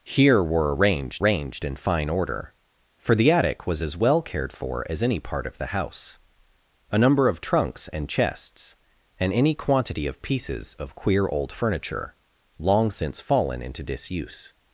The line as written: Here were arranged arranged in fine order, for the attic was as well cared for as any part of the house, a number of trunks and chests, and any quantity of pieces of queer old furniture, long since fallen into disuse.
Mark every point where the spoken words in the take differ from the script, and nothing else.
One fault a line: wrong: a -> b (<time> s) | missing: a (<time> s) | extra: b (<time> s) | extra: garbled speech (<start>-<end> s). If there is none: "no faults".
no faults